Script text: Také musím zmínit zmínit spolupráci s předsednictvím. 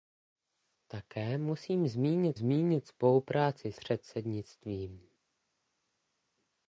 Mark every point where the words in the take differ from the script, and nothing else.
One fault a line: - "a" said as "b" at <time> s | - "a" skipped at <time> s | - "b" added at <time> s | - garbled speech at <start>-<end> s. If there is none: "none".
none